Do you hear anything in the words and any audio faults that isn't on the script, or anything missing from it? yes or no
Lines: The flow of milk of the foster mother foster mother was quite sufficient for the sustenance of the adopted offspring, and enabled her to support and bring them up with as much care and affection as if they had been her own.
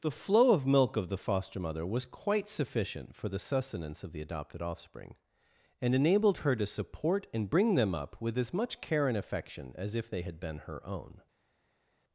yes